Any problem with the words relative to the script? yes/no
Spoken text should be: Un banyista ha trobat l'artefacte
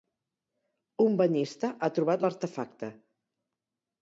no